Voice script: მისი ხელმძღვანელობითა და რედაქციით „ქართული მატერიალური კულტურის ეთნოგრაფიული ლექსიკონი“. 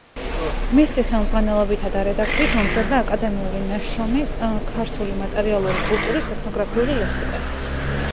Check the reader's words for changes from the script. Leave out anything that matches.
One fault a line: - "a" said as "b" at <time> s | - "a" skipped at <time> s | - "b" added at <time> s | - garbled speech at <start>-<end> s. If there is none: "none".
- "მომზადდა აკადემიური ნაშრომი" added at 2.6 s